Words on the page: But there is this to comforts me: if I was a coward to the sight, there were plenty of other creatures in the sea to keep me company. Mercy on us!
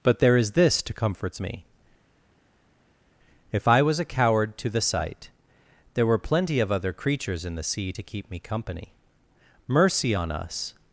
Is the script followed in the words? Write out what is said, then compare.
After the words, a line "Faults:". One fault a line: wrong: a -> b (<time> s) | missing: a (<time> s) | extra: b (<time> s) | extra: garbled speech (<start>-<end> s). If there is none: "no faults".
But there is this to comforts me: if I was a coward to the sight, there were plenty of other creatures in the sea to keep me company. Mercy on us!
Faults:
no faults